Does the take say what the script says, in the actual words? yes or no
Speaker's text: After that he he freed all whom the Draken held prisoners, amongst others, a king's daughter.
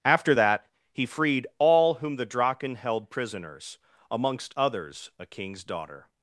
no